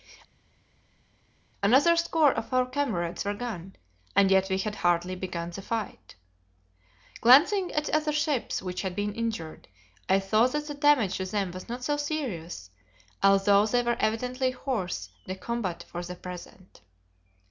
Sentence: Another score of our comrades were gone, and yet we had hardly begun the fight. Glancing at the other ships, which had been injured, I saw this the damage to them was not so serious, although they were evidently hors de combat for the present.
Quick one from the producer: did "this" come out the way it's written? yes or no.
no